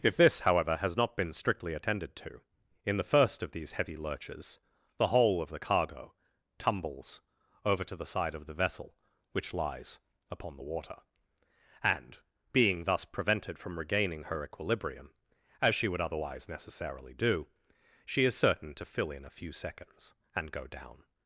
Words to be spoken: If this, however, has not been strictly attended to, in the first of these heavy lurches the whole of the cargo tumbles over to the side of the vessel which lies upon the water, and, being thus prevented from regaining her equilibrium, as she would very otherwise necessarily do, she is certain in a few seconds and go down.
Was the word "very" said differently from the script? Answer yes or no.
yes